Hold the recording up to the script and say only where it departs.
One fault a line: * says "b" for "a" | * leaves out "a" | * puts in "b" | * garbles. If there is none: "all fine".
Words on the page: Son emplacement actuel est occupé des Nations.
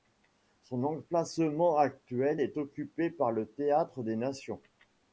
* puts in "par le Théâtre"